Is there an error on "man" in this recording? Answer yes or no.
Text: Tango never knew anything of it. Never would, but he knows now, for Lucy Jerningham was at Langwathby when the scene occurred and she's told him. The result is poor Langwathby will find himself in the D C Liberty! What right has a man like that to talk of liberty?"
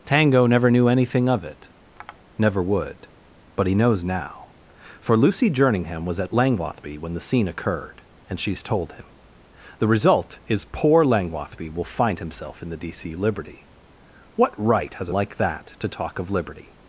yes